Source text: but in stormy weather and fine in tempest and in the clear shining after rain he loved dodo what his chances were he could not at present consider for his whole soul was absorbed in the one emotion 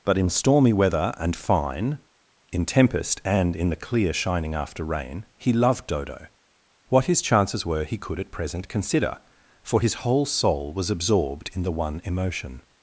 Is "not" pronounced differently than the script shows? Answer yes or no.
yes